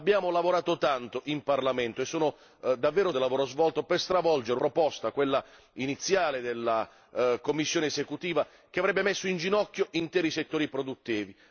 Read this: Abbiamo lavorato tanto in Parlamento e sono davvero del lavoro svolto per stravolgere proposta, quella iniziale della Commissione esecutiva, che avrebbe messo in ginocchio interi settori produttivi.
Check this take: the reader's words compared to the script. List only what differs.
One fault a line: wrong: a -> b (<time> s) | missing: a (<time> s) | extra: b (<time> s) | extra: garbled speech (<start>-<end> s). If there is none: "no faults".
no faults